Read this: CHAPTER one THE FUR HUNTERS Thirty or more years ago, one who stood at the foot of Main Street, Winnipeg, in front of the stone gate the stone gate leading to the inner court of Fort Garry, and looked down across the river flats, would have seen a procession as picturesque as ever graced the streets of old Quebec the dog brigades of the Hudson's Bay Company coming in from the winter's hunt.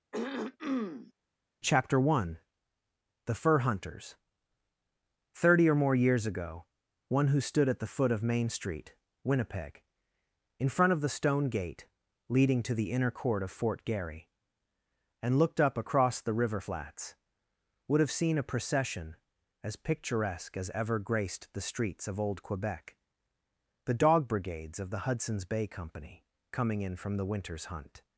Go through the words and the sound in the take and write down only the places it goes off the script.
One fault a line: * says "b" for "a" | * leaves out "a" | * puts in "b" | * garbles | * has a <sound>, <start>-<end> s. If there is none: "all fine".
* has a throat clearing, 0.1-1.1 s
* leaves out "the stone gate"
* says "up" for "down"